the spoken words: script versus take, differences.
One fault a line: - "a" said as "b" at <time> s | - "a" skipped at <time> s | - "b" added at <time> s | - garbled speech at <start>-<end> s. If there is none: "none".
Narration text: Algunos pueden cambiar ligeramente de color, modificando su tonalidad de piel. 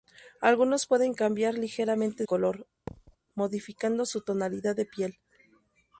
- "de" skipped at 2.2 s